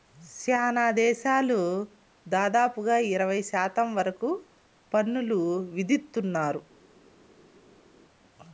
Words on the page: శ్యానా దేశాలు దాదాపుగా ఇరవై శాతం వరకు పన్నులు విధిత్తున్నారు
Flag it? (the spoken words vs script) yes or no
no